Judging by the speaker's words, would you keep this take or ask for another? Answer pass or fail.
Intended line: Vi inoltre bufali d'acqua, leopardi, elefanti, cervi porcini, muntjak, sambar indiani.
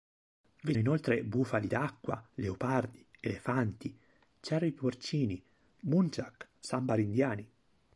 pass